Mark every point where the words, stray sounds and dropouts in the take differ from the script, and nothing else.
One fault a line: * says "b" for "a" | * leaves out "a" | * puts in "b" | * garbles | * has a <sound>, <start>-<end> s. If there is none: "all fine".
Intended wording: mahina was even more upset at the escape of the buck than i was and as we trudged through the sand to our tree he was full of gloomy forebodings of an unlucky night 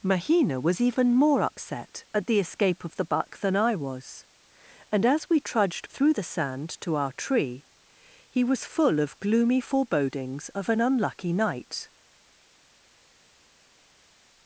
all fine